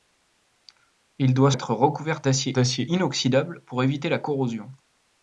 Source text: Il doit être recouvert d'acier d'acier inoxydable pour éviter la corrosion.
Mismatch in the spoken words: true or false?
false